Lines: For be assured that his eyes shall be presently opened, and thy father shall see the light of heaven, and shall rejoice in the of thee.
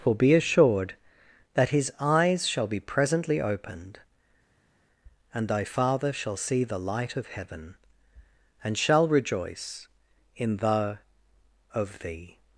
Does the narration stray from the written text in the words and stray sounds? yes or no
no